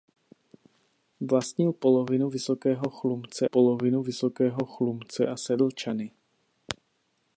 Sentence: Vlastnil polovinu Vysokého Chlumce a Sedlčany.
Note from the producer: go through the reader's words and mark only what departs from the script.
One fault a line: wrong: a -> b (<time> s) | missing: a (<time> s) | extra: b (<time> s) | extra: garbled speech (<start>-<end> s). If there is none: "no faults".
extra: polovinu Vysokého Chlumce (3.4 s)